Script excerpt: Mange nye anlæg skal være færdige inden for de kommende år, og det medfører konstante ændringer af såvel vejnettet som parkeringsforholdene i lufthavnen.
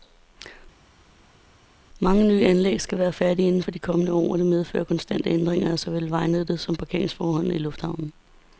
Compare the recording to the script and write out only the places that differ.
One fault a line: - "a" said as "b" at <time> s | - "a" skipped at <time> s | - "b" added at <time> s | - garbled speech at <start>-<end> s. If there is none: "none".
none